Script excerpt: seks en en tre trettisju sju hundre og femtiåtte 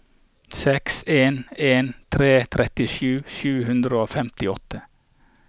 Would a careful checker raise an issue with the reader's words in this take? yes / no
no